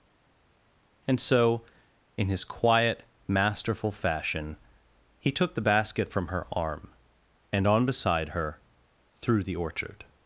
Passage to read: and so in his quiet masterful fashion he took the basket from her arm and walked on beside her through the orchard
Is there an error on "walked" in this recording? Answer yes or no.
yes